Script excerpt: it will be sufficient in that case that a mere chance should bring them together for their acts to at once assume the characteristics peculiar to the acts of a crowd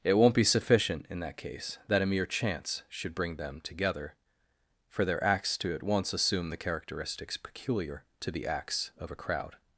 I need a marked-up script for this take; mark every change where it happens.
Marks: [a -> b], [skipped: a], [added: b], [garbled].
it [will -> won't] be sufficient in that case that a mere chance should bring them together for their acts to at once assume the characteristics peculiar to the acts of a crowd